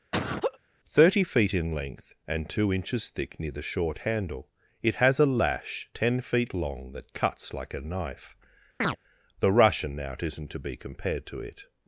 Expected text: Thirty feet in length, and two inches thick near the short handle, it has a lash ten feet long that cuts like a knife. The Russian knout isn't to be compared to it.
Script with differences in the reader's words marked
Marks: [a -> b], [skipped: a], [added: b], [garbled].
Thirty feet in length, and two inches thick near the short handle, it has a lash ten feet long that cuts like a knife. The Russian knout isn't to be compared to it.